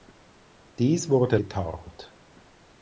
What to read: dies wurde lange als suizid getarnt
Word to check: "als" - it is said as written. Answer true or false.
false